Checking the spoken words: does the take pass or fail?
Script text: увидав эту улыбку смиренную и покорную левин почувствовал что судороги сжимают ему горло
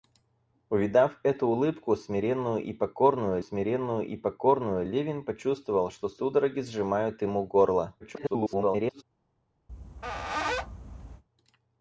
fail